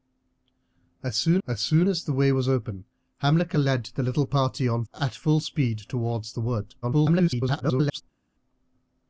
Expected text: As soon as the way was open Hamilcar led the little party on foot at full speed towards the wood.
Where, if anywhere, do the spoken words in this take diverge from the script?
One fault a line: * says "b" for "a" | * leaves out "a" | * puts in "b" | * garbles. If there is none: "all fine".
* puts in "soon as"
* leaves out "foot"
* garbles